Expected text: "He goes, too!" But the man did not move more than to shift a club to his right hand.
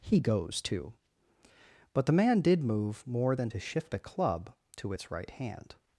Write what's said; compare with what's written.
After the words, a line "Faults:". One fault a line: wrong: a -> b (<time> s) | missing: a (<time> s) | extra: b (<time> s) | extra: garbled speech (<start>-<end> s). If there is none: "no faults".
"He goes, too!" But the man did move more than to shift a club to its right hand.
Faults:
missing: not (2.6 s)
wrong: his -> its (4.9 s)